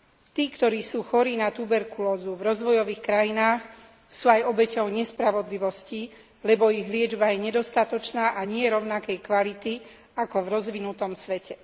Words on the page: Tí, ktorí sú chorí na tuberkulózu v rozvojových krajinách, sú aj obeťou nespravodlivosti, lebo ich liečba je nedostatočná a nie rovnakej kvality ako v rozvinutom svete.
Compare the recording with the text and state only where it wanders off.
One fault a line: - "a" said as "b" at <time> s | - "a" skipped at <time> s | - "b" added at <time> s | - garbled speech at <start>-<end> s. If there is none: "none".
none